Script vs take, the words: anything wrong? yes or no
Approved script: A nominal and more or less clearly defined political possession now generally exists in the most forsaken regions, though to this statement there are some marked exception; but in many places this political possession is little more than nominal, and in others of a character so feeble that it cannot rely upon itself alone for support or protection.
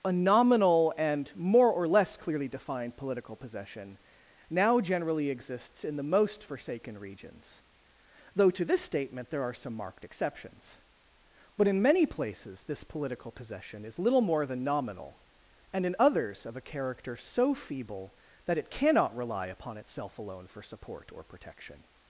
yes